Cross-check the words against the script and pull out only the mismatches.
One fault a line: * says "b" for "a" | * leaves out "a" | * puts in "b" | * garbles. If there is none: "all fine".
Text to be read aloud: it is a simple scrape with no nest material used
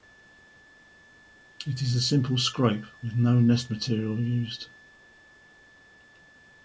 all fine